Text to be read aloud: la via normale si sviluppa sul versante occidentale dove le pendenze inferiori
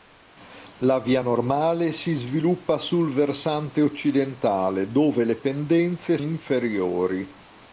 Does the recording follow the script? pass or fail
pass